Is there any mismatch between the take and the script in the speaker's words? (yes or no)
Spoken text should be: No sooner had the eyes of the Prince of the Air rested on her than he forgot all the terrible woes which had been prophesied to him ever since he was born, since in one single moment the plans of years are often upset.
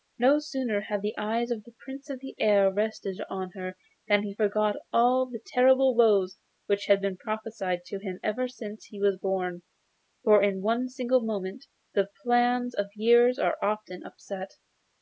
yes